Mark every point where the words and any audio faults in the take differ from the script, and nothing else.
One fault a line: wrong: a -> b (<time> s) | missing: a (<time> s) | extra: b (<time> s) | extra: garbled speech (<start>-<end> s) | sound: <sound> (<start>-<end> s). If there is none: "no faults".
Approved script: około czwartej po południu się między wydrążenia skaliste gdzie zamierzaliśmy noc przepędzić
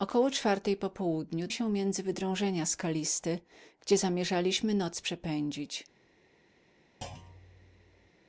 sound: thud (7.0-8.1 s)